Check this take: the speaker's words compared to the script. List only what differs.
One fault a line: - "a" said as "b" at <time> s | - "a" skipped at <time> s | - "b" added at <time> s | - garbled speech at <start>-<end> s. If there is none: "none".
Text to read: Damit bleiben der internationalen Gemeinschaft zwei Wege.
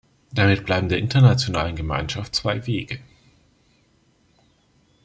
none